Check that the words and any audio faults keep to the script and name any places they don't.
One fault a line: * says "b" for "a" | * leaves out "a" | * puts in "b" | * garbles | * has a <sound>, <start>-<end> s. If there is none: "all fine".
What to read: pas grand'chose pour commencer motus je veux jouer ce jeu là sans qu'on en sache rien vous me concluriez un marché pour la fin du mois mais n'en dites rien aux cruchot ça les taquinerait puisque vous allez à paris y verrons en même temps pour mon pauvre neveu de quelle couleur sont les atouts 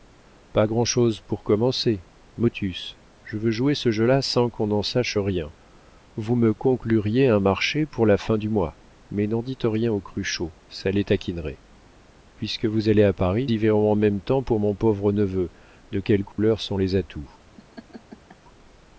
* has a dropout, 16.3-16.4 s
* has a laugh, 17.5-18.4 s